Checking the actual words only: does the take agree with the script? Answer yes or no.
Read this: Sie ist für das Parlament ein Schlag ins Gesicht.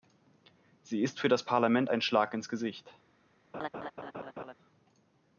yes